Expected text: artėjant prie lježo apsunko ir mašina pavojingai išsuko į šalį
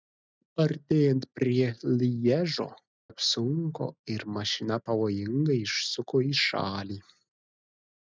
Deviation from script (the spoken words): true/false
false